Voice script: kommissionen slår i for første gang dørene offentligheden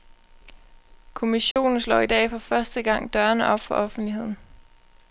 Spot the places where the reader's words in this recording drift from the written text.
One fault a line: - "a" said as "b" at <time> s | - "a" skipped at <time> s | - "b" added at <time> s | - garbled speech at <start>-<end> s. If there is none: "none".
- "dag" added at 2.0 s
- "op for" added at 3.5 s